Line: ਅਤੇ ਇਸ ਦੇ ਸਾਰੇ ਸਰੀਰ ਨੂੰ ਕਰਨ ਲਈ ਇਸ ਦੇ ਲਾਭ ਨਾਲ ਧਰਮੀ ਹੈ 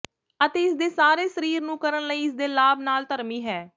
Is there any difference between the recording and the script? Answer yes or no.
no